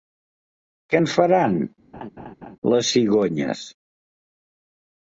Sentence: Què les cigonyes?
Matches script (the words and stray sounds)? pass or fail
fail